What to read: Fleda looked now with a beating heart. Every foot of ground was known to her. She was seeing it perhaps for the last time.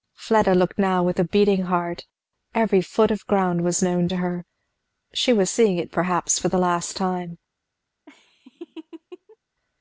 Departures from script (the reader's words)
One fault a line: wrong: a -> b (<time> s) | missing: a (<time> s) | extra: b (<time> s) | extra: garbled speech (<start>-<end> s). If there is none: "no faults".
no faults